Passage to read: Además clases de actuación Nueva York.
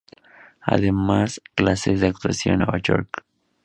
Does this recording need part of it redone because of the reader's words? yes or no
no